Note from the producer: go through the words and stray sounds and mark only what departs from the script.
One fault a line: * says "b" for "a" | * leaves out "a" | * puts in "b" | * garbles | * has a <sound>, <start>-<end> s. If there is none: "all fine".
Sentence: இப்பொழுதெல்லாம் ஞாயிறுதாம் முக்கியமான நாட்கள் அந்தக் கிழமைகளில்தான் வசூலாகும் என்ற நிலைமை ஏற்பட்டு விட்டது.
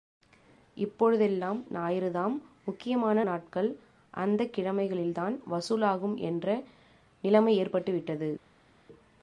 all fine